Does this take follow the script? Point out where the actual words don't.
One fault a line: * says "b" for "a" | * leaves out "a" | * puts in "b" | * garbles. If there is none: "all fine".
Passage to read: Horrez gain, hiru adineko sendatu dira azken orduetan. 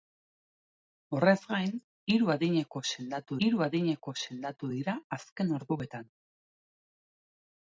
* puts in "hiru adineko sendatu"